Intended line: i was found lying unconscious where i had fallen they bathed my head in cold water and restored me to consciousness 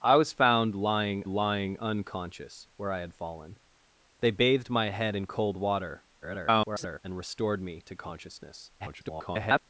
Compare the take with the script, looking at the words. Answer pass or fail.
fail